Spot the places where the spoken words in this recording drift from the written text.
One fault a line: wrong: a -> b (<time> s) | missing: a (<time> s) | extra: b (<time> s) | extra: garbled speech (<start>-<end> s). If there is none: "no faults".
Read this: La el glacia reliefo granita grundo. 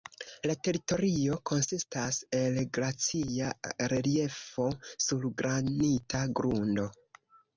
extra: teritorio konsistas (0.7 s)
extra: sur (5.1 s)